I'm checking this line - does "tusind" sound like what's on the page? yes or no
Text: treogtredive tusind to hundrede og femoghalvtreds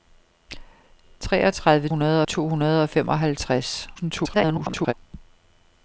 no